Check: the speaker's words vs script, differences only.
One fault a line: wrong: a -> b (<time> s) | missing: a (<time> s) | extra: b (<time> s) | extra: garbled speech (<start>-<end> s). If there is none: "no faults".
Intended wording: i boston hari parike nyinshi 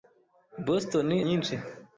missing: hari parike (1.1 s)